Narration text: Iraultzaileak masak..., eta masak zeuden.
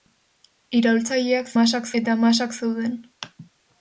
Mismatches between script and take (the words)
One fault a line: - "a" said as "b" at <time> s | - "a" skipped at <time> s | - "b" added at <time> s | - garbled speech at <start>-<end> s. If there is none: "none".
none